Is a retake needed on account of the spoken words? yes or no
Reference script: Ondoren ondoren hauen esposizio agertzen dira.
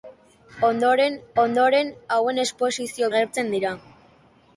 no